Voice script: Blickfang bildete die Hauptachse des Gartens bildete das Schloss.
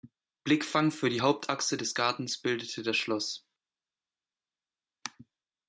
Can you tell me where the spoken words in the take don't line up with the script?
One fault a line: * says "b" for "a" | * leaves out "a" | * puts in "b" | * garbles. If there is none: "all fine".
* says "für" for "bildete"